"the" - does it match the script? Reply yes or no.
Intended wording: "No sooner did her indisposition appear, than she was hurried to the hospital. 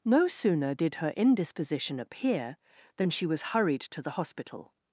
yes